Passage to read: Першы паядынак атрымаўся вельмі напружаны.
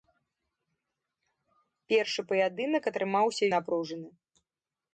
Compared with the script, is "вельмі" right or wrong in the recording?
wrong